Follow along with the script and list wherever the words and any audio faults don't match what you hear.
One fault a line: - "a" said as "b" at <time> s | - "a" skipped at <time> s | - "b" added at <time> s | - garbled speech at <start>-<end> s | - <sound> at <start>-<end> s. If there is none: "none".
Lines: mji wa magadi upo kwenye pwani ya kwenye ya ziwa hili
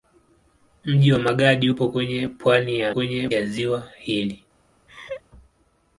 - laugh at 4.9-5.2 s